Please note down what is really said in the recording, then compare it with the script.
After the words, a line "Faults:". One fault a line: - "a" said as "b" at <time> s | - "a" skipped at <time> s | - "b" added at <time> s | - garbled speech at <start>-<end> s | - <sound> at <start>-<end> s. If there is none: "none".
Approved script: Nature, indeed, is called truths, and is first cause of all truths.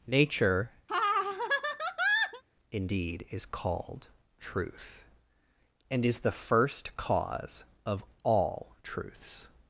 Nature, indeed, is called truth, and is the first cause of all truths.
Faults:
- laugh at 0.9-2.4 s
- "truths" said as "truth" at 4.4 s
- "the" added at 6.2 s